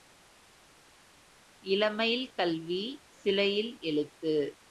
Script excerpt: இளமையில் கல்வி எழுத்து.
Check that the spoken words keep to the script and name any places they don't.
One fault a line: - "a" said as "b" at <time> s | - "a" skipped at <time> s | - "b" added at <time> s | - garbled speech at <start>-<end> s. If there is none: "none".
- "சிலையில்" added at 3.1 s